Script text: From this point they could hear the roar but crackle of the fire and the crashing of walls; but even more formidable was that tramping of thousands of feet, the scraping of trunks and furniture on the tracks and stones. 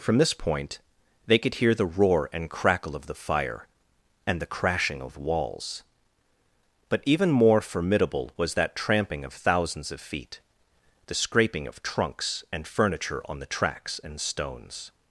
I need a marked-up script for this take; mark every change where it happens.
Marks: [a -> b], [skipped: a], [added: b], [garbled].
From this point they could hear the roar [but -> and] crackle of the fire and the crashing of walls; but even more formidable was that tramping of thousands of feet, the scraping of trunks and furniture on the tracks and stones.